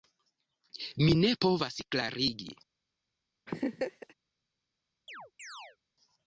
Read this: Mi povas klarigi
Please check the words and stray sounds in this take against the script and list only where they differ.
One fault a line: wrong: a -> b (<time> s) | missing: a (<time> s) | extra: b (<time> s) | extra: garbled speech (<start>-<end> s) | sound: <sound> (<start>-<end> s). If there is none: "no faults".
extra: ne (1.2 s)
sound: laugh (3.5-4.1 s)
sound: chirp (5.1-5.8 s)